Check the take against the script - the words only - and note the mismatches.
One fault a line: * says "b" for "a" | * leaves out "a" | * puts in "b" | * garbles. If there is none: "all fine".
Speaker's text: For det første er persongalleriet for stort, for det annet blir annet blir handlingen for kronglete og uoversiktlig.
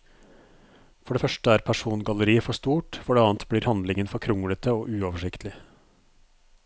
* leaves out "annet blir"